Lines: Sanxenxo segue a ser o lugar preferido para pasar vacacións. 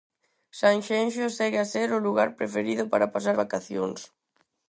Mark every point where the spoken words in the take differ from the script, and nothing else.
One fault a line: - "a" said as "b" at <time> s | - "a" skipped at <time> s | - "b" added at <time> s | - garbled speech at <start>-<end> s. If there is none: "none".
none